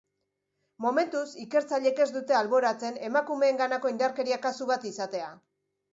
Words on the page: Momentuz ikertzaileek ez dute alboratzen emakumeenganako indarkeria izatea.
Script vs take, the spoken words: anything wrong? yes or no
yes